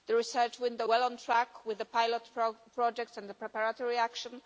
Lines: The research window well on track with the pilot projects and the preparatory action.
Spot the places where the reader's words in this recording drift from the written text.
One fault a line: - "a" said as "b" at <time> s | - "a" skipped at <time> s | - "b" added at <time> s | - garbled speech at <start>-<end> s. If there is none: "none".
none